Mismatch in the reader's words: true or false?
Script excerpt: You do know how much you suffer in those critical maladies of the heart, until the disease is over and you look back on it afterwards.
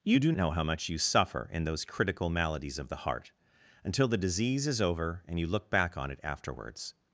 false